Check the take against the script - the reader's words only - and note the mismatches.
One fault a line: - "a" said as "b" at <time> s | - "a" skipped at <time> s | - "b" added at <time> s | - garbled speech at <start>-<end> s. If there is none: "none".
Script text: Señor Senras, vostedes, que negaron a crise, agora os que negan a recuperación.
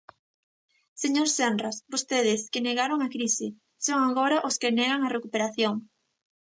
- "son" added at 3.9 s